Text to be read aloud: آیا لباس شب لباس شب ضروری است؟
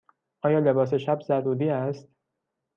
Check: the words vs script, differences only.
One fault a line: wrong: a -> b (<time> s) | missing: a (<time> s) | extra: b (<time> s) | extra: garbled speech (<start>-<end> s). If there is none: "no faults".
missing: لباس شب (1.2 s)